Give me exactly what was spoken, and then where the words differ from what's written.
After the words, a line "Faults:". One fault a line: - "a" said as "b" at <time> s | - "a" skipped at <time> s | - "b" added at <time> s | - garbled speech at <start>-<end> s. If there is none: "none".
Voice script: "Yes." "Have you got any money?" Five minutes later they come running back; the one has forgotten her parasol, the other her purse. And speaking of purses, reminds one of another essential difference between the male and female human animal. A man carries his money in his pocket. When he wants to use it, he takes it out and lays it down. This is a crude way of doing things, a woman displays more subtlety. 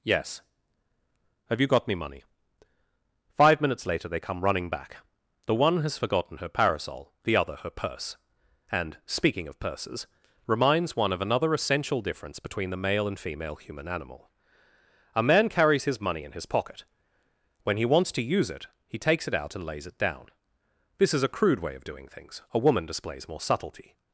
"Yes." "Have you got me money?" Five minutes later they come running back; the one has forgotten her parasol, the other her purse. And speaking of purses, reminds one of another essential difference between the male and female human animal. A man carries his money in his pocket. When he wants to use it, he takes it out and lays it down. This is a crude way of doing things, a woman displays more subtlety.
Faults:
- "any" said as "me" at 1.9 s